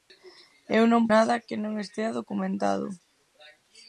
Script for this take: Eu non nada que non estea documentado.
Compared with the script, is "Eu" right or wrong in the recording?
right